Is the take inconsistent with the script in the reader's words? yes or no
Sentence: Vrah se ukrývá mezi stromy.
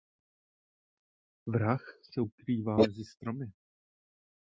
no